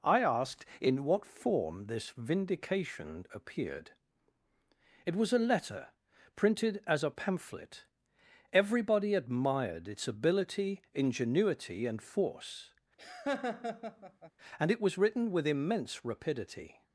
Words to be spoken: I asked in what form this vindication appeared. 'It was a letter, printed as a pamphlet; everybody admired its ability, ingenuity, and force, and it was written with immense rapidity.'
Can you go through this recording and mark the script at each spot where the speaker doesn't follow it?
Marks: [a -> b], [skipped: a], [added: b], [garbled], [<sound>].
I asked in what form this vindication appeared. 'It was a letter, printed as a pamphlet; everybody admired its ability, ingenuity, and force, [laugh] and it was written with immense rapidity.'